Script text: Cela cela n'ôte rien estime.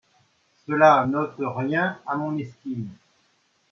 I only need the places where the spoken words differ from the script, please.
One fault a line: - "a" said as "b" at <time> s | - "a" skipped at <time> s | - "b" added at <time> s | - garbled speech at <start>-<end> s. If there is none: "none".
- "cela" skipped at 1.1 s
- "à mon" added at 2.0 s